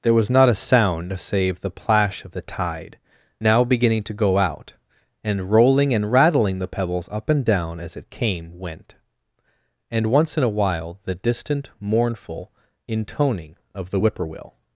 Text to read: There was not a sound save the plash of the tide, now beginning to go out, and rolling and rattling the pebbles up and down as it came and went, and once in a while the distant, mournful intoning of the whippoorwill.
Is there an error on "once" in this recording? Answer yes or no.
no